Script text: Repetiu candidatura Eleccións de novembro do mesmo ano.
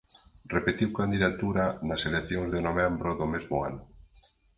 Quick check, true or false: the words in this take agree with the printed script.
false